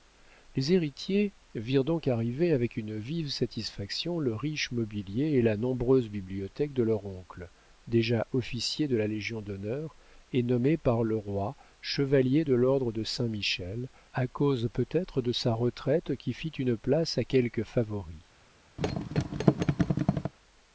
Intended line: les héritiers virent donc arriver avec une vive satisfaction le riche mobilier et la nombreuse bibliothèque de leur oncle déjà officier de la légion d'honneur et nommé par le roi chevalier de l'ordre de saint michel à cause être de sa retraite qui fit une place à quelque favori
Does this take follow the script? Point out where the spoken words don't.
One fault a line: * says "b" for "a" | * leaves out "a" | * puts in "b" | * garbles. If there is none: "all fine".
* puts in "peut"